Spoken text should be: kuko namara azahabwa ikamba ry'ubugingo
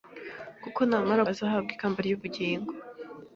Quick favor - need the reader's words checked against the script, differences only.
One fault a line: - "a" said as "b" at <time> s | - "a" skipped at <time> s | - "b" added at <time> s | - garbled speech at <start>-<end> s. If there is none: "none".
none